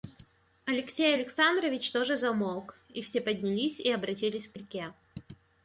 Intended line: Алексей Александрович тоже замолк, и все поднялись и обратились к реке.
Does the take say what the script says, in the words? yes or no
yes